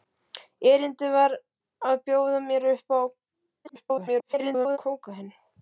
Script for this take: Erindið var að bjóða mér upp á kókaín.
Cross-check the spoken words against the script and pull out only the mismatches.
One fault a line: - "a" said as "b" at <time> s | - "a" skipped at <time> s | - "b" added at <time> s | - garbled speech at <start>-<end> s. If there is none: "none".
- garbled speech at 3.6-4.8 s